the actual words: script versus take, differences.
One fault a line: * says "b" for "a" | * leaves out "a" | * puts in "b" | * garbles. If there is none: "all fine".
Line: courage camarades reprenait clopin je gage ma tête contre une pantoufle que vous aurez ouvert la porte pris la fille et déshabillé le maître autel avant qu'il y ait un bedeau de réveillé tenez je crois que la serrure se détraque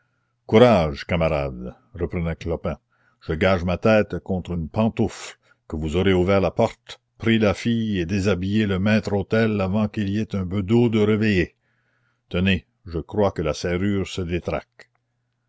all fine